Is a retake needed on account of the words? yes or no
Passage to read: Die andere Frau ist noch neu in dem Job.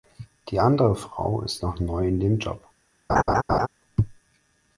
no